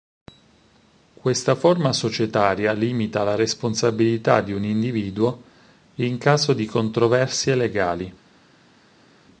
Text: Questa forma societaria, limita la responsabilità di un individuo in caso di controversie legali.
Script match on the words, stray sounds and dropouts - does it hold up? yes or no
yes